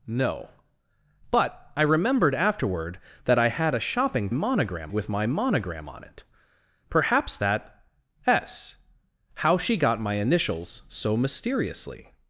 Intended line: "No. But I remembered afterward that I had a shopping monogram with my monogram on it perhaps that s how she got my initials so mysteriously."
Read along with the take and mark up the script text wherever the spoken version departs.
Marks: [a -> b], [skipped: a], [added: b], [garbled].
"No. But I remembered afterward that I had a shopping monogram with my monogram on it perhaps that s how she got my initials so mysteriously."